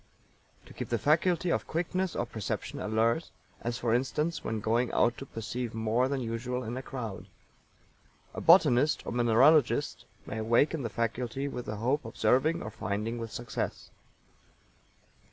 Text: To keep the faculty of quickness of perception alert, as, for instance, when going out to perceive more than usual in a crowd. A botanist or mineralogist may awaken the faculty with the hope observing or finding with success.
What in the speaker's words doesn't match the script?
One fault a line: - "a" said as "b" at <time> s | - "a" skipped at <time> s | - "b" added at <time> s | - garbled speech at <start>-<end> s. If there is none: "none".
none